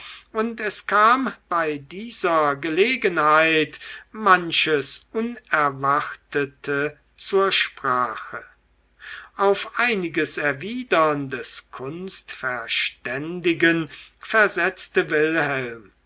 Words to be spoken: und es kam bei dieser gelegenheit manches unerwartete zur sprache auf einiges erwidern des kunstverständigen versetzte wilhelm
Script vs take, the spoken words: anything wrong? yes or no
no